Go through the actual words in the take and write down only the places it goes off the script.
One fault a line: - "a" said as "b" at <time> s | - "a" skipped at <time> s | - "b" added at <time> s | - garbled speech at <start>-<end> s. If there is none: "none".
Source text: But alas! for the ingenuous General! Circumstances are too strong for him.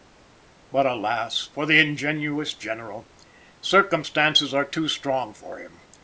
none